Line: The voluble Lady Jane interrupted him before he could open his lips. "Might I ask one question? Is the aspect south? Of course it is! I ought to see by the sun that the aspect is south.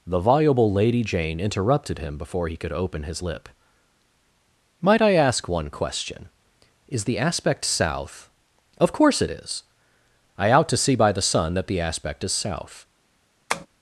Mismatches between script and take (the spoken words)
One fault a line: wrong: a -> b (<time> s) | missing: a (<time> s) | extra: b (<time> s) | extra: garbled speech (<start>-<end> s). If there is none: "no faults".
wrong: lips -> lip (3.2 s)
wrong: ought -> out (10.5 s)